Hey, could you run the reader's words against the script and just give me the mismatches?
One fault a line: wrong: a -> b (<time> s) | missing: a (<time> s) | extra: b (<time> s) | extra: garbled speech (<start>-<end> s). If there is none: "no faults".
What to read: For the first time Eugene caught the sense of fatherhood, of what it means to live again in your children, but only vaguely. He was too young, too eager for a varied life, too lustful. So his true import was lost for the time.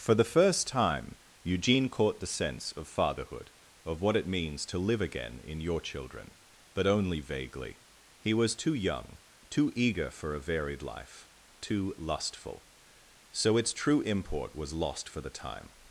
wrong: his -> its (13.6 s)